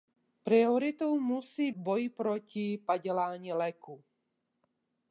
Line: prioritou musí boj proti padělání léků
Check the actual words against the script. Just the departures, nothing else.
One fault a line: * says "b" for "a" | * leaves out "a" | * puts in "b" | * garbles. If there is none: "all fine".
all fine